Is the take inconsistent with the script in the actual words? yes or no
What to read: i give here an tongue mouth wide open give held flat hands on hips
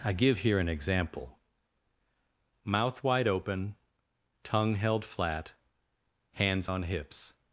yes